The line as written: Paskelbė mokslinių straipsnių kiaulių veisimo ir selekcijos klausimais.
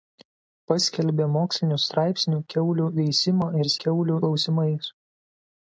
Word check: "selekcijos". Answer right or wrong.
wrong